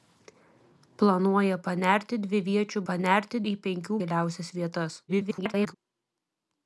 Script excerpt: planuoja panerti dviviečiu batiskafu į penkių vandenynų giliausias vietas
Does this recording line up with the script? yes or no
no